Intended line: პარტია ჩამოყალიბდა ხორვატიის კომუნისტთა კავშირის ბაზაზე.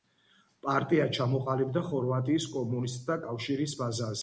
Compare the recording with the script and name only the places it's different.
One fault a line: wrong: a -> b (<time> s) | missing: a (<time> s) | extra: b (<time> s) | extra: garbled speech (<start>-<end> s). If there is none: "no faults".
no faults